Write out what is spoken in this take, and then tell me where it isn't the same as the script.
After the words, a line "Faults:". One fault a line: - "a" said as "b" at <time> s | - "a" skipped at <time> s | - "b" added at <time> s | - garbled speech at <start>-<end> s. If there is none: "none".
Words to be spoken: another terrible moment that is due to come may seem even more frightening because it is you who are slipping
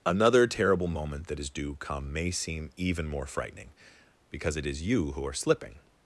another terrible moment that is due come may seem even more frightening because it is you who are slipping
Faults:
- "to" skipped at 1.8 s